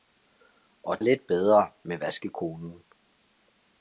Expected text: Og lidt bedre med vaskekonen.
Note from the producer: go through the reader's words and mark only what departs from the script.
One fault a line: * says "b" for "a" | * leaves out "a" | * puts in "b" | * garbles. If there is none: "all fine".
all fine